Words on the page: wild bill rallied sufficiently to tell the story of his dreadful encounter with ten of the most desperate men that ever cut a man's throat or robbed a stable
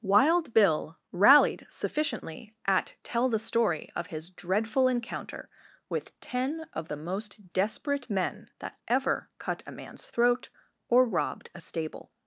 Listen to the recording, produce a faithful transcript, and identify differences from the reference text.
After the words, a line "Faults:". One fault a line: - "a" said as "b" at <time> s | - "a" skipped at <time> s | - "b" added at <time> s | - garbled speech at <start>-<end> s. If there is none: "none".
wild bill rallied sufficiently at tell the story of his dreadful encounter with ten of the most desperate men that ever cut a man's throat or robbed a stable
Faults:
- "to" said as "at" at 2.6 s